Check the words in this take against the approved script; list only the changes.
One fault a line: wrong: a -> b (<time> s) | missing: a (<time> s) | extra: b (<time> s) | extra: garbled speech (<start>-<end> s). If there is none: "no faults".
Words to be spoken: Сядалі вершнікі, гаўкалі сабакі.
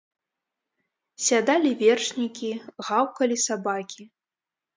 no faults